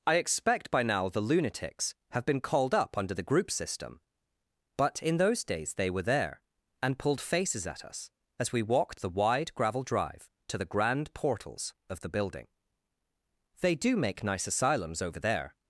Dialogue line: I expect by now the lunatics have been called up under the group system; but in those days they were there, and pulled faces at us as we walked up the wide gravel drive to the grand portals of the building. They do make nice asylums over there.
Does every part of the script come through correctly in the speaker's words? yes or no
no